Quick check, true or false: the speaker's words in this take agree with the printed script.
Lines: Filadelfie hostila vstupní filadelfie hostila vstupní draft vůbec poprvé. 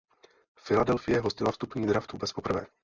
false